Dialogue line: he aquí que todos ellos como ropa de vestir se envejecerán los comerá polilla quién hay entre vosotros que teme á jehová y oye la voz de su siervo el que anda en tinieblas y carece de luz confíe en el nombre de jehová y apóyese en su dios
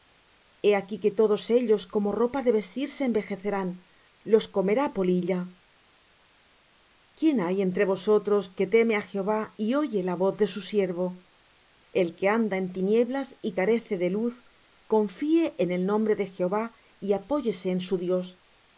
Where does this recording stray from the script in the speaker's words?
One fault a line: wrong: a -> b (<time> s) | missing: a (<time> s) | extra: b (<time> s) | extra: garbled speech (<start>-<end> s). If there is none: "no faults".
no faults